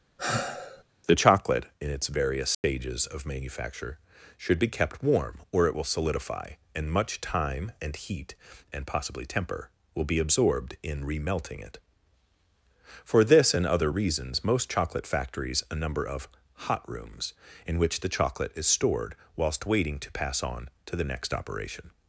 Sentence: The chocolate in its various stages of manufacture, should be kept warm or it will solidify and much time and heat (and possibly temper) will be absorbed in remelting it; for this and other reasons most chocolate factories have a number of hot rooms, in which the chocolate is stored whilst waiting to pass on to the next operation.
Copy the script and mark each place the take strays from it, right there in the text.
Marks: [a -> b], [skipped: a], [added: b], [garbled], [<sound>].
[sigh] The chocolate in its various stages [dropout] of manufacture, should be kept warm or it will solidify and much time and heat (and possibly temper) will be absorbed in remelting it; for this and other reasons most chocolate factories [skipped: have] a number of hot rooms, in which the chocolate is stored whilst waiting to pass on to the next operation.